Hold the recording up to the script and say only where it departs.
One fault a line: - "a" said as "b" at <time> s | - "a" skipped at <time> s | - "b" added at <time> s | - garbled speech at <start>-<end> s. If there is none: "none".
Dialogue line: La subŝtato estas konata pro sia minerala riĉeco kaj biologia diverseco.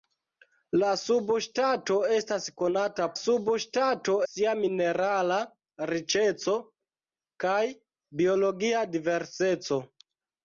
- "pro" said as "subŝtato" at 3.2 s